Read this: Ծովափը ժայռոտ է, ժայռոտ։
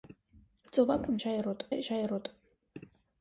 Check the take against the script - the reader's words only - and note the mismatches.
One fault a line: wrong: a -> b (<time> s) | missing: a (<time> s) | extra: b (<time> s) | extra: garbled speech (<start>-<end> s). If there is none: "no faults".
no faults